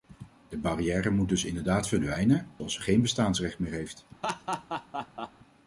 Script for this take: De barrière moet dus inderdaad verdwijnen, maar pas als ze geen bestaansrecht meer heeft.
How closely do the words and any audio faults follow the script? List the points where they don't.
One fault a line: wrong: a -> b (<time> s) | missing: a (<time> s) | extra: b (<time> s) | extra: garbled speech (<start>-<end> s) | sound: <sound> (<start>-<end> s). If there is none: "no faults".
missing: maar pas (2.5 s)
sound: laugh (4.2-5.3 s)